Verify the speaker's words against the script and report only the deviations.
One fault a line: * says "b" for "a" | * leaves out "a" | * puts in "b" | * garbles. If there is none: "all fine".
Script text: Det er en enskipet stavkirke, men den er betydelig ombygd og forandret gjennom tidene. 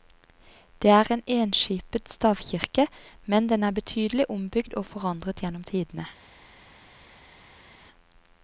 all fine